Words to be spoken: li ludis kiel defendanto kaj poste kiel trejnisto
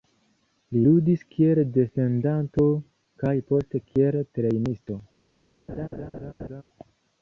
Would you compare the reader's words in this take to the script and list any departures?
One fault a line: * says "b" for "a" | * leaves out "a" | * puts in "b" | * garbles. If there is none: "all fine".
all fine